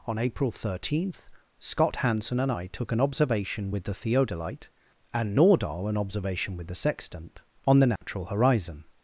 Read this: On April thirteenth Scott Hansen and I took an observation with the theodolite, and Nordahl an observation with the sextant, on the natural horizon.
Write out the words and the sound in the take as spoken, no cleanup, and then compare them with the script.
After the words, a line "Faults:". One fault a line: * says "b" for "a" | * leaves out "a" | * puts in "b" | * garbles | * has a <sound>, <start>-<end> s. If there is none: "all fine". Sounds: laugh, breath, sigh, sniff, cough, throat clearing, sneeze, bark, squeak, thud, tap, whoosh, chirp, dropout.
On April thirteenth Scott Hansen and I took an observation with the theodolite, and Nordahl an observation with the sextant, on the natural horizon.
Faults:
* has a dropout, 8.0-8.0 s